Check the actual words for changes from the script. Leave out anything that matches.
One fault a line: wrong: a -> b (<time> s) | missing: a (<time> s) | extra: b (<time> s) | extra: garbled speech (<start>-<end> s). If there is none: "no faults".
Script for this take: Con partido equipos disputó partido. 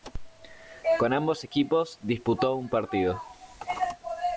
wrong: partido -> ambos (1.1 s)
extra: un (2.6 s)